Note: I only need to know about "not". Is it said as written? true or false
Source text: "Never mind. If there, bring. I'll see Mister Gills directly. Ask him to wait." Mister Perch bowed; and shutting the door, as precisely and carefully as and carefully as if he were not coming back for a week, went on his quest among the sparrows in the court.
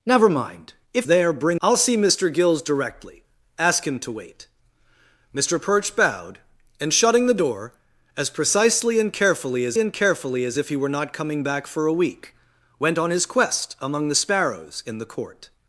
true